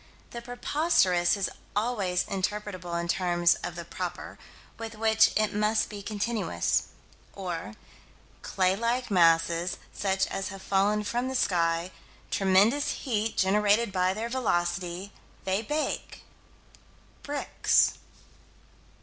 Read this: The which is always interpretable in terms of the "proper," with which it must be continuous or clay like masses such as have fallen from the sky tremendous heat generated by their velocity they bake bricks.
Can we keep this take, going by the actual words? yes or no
no